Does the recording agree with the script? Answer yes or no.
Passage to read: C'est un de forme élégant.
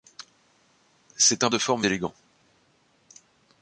yes